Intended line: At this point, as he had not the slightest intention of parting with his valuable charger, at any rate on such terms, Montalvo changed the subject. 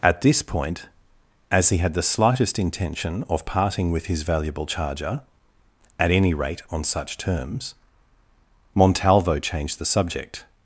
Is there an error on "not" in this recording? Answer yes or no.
yes